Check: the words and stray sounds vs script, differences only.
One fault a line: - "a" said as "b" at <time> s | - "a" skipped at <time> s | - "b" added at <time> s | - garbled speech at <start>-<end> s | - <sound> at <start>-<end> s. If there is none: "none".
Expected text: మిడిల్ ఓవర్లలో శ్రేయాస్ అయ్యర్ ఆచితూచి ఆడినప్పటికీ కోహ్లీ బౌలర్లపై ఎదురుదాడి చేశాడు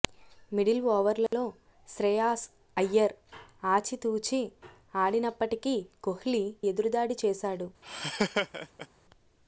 - dropout at 1.3-1.3 s
- "బౌలర్లపై" skipped at 6.4 s
- laugh at 7.8-8.9 s